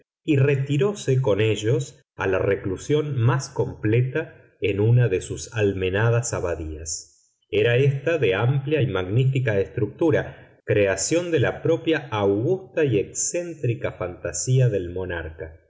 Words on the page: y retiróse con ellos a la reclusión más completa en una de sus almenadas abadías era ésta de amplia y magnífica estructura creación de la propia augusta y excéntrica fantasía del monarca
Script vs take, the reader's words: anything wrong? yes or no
no